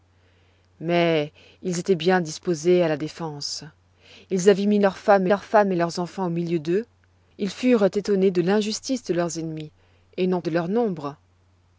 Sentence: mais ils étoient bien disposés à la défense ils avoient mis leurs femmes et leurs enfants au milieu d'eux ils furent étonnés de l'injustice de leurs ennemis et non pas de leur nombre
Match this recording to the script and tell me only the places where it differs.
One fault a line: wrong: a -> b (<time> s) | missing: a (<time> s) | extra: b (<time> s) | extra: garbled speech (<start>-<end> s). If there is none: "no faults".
extra: leurs femmes (5.3 s)
missing: pas (10.4 s)